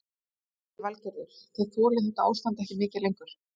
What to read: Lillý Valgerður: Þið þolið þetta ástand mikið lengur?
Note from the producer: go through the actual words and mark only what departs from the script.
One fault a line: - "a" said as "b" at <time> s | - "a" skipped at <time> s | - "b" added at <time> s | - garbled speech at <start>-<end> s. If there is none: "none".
- "ekki" added at 2.7 s